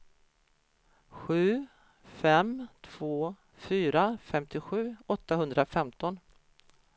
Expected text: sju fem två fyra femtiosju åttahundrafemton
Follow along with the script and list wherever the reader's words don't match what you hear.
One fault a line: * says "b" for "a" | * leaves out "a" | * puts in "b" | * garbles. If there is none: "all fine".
all fine